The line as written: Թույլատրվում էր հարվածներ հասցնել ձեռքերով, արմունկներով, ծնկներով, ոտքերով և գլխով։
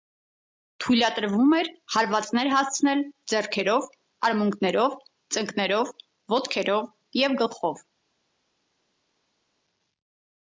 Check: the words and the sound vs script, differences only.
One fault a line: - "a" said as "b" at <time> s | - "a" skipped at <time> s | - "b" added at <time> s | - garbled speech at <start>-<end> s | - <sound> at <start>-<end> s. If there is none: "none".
none